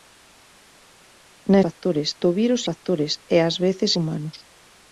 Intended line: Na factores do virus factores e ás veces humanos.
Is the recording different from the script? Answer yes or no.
no